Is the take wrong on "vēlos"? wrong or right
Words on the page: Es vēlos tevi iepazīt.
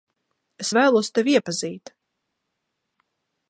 right